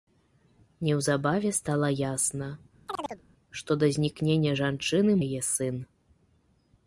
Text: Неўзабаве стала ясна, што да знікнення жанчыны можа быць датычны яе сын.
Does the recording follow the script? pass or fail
fail